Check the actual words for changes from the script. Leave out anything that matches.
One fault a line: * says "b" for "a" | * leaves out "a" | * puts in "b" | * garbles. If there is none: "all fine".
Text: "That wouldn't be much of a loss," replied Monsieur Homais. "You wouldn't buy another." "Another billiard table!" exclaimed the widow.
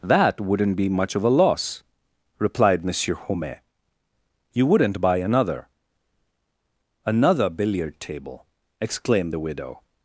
all fine